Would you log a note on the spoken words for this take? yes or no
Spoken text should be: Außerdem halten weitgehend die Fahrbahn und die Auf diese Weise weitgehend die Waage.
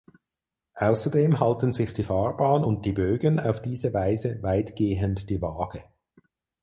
yes